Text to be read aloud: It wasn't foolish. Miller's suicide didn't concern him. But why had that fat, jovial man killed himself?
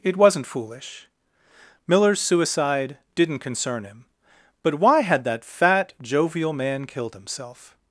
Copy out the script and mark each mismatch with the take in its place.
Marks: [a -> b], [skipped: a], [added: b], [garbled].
It wasn't foolish. Miller's suicide didn't concern him. But why had that fat, jovial man killed himself?